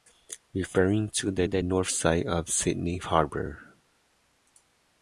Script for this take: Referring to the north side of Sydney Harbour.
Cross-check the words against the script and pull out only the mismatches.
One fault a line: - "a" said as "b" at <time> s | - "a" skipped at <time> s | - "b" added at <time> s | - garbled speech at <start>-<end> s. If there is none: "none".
- "the" added at 1.4 s